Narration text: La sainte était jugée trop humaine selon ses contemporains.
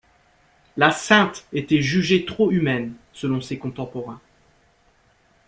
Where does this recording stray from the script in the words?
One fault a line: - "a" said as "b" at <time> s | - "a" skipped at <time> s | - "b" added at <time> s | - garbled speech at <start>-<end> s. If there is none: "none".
none